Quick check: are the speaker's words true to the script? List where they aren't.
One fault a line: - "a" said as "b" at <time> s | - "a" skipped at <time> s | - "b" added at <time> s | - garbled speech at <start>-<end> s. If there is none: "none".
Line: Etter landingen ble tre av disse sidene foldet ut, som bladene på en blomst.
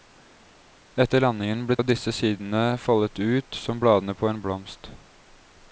- "tre" skipped at 1.8 s